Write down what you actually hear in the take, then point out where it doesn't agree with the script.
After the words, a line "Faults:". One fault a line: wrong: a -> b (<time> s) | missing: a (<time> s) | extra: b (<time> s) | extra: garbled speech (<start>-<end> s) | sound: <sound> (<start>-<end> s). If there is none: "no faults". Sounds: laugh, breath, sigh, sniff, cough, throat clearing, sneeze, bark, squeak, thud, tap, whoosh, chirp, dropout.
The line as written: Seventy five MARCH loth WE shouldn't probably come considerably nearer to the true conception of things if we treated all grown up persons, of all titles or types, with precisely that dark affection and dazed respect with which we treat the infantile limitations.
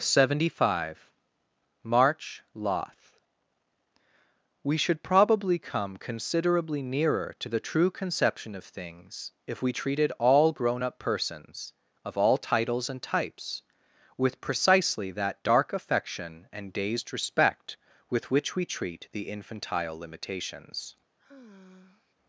Seventy five MARCH loth WE should probably come considerably nearer to the true conception of things if we treated all grown up persons, of all titles and types, with precisely that dark affection and dazed respect with which we treat the infantile limitations.
Faults:
wrong: shouldn't -> should (4.8 s)
wrong: or -> and (12.9 s)
sound: sigh (21.2-22.1 s)